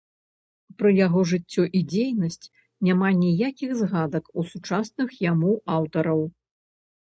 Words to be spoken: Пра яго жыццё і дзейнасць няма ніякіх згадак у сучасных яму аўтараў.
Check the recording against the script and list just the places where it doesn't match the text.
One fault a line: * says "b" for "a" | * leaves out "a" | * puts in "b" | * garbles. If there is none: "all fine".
all fine